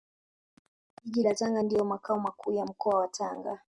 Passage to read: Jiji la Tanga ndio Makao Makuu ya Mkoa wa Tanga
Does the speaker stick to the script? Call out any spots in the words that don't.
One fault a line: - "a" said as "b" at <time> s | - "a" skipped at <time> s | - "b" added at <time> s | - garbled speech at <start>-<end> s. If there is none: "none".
none